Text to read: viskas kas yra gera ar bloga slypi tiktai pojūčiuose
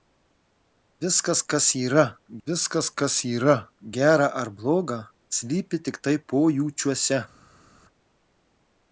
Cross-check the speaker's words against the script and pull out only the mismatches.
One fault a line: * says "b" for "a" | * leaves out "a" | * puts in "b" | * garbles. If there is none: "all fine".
* puts in "viskas kas yra"